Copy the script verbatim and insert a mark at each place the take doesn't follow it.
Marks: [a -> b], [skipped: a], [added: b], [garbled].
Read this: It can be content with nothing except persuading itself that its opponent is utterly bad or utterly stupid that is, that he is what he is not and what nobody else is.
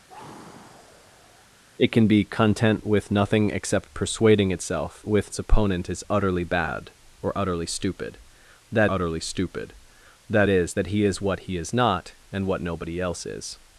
It can be content with nothing except persuading itself [that -> with] its opponent is utterly bad or utterly stupid that [added: utterly stupid that] is, that he is what he is not and what nobody else is.